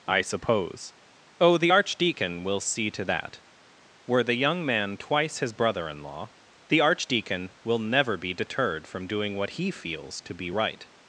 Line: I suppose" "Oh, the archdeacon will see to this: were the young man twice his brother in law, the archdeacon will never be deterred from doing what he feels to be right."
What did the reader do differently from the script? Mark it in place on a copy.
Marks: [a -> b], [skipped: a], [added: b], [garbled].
I suppose" "Oh, the archdeacon will see to [this: -> that] were the young man twice his brother in law, the archdeacon will never be deterred from doing what he feels to be right."